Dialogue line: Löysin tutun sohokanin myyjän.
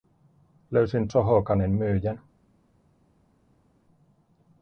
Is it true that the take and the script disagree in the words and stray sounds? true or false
true